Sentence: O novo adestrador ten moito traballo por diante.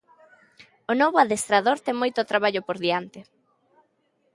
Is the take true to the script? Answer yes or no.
yes